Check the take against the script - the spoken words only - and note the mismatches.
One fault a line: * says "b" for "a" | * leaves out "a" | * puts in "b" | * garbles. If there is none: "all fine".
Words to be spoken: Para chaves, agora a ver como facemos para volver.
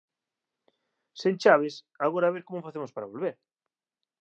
* says "Sen" for "Para"